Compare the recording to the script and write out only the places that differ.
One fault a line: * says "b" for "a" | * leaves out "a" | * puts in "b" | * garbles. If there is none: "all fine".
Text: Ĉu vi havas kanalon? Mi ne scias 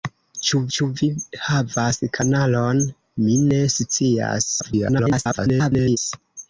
* puts in "ĉu"
* garbles